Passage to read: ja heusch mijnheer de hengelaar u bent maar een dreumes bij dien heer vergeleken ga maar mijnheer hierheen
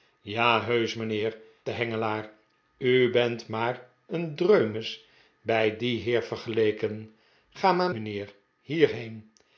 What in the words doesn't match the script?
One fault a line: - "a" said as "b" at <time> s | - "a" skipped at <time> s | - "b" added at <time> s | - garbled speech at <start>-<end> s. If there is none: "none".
none